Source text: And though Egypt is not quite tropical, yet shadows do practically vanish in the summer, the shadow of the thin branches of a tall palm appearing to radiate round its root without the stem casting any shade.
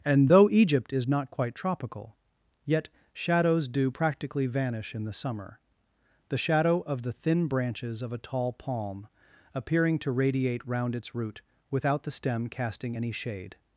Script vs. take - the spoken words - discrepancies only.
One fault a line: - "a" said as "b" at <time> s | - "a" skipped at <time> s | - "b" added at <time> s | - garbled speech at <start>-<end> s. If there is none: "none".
none